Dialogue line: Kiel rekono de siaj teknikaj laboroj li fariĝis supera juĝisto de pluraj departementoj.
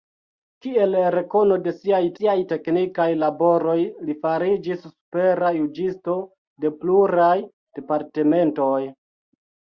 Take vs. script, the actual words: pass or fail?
fail